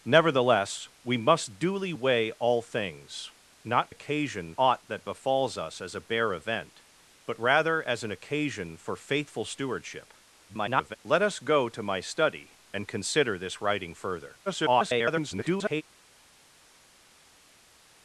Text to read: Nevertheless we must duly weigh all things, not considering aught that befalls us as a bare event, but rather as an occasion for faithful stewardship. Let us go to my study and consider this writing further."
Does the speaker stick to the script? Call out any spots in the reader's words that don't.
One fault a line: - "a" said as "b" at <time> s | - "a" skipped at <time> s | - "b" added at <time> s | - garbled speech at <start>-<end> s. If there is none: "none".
- "considering" said as "occasion" at 3.9 s
- garbled speech at 10.5-11.0 s
- garbled speech at 14.5-15.8 s